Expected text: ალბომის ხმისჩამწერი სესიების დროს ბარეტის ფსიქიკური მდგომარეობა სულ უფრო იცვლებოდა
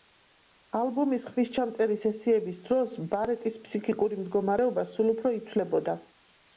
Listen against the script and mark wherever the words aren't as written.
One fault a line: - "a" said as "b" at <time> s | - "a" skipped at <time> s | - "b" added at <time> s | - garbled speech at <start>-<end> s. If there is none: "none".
none